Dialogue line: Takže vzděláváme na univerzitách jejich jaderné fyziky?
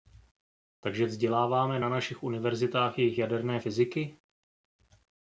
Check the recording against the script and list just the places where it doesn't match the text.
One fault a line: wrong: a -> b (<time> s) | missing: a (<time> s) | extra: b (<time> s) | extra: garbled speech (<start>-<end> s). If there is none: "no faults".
extra: našich (1.9 s)